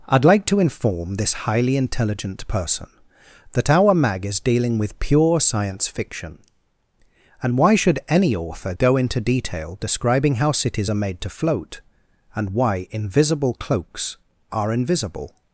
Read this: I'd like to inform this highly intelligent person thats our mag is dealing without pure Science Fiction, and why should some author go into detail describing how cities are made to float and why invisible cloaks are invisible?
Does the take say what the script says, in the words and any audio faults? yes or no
no